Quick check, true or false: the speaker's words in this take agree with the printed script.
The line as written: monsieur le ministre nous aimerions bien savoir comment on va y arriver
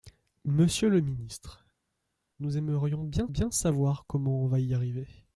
false